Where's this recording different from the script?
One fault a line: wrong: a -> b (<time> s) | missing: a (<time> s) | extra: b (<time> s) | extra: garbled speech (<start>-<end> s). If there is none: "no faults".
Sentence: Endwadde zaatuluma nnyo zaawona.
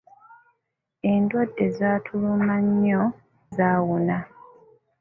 no faults